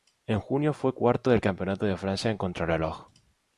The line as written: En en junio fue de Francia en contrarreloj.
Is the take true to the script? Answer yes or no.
no